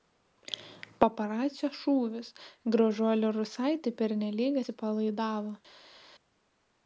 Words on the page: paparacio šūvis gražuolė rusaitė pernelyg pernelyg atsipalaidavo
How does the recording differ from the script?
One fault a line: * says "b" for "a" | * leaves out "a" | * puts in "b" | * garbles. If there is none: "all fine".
* leaves out "pernelyg"